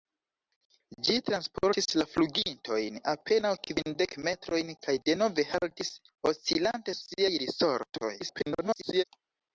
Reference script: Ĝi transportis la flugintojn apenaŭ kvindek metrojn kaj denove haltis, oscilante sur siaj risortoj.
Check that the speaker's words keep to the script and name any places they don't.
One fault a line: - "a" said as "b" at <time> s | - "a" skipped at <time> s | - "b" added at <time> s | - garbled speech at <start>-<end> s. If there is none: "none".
- "sur" skipped at 7.0 s
- garbled speech at 8.2-9.0 s